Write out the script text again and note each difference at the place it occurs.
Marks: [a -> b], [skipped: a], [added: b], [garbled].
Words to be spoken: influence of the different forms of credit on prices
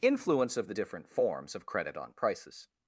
influence of the different forms of credit on prices